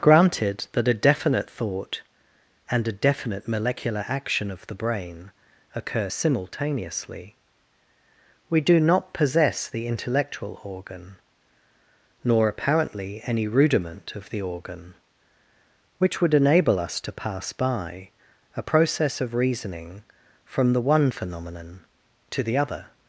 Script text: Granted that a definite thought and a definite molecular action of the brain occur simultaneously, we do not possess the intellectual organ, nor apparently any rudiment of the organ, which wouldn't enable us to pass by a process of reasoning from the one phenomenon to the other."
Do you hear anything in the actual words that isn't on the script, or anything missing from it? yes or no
yes